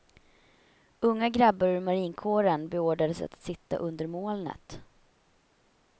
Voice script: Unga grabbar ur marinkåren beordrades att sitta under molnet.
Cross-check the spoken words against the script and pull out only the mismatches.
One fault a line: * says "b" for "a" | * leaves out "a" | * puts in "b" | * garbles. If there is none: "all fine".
all fine